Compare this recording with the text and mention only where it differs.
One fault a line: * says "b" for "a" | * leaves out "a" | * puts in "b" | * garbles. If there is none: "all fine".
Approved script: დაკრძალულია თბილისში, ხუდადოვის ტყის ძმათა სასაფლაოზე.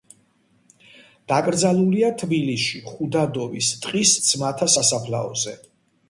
all fine